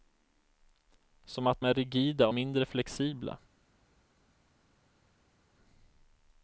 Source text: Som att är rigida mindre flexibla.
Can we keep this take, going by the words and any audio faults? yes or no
yes